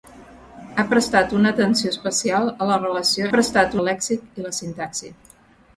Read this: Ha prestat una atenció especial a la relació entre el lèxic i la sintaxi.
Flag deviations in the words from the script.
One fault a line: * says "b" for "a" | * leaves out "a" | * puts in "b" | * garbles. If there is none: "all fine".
* says "prestat" for "entre"